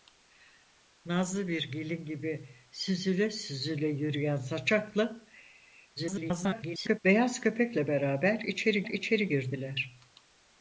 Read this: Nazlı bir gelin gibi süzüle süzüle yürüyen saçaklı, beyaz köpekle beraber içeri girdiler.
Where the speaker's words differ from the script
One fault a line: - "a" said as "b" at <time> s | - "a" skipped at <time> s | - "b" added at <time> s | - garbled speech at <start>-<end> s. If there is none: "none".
- garbled speech at 6.0-7.0 s
- "içeri" added at 8.8 s